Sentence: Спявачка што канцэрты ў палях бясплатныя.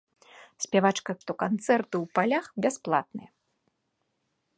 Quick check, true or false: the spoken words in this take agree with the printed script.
true